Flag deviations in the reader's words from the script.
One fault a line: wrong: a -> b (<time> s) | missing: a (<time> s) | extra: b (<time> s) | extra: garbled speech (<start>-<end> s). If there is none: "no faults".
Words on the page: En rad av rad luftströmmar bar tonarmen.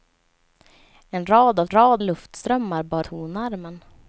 no faults